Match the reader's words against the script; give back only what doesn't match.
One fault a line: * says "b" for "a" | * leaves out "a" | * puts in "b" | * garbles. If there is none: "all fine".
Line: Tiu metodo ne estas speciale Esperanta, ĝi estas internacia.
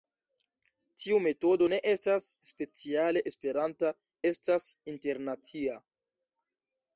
* leaves out "ĝi"